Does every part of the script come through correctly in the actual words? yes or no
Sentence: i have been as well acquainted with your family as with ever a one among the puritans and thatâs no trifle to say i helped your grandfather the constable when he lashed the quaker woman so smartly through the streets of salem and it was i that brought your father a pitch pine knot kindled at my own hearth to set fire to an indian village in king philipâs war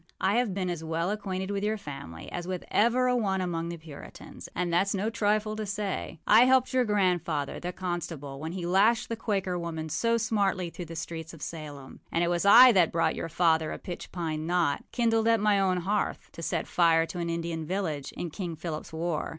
yes